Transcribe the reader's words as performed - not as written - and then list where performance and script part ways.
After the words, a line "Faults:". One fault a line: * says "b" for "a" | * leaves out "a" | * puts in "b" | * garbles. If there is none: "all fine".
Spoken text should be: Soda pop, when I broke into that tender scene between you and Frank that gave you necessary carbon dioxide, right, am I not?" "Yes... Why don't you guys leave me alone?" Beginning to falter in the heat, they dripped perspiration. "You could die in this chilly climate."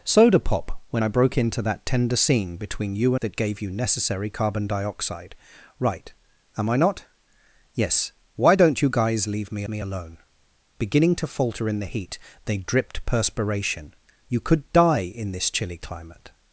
Soda pop, when I broke into that tender scene between you that gave you necessary carbon dioxide, right, am I not?" "Yes... Why don't you guys leave me me alone?" Beginning to falter in the heat, they dripped perspiration. "You could die in this chilly climate."
Faults:
* leaves out "and Frank"
* puts in "me"